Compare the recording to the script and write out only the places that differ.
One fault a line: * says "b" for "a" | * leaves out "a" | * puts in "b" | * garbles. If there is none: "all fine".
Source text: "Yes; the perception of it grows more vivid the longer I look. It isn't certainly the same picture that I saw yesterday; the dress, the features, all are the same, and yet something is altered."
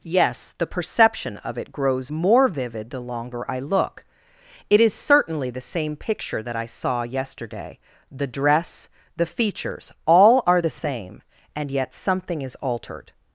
* says "is" for "isn't"